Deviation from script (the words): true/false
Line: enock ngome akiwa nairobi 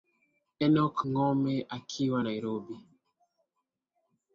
false